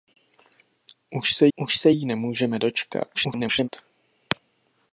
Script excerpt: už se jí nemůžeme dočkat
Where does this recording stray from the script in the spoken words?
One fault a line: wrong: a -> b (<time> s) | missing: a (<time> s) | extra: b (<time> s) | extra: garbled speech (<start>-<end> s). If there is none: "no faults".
extra: už se (1.5 s)
extra: garbled speech (3.1-3.7 s)